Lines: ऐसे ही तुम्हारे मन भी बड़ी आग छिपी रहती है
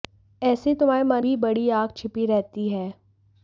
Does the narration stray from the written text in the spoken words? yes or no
no